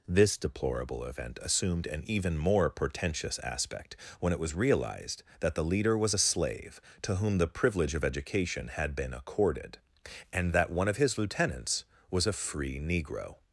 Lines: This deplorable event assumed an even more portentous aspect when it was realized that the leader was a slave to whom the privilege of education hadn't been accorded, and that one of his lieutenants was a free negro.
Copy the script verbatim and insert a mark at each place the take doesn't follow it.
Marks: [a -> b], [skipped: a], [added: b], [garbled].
This deplorable event assumed an even more portentous aspect when it was realized that the leader was a slave to whom the privilege of education [hadn't -> had] been accorded, and that one of his lieutenants was a free negro.